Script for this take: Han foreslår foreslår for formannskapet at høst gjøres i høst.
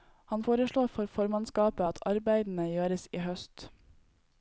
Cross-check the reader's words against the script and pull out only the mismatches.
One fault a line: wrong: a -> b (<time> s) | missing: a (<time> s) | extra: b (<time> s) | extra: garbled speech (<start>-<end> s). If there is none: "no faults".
missing: foreslår (0.9 s)
wrong: høst -> arbeidene (2.1 s)